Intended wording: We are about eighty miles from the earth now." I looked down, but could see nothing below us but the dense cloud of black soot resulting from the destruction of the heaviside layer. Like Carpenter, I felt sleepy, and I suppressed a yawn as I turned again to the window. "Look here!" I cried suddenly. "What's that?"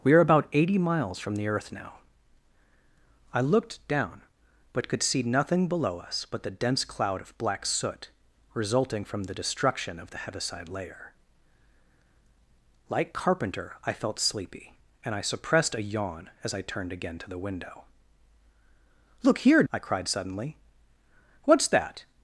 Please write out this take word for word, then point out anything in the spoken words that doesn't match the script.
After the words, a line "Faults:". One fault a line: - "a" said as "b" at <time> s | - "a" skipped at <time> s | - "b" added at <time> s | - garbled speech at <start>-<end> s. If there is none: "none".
We are about eighty miles from the earth now." I looked down, but could see nothing below us but the dense cloud of black soot resulting from the destruction of the heaviside layer. Like Carpenter, I felt sleepy, and I suppressed a yawn as I turned again to the window. "Look here!" I cried suddenly. "What's that?"
Faults:
none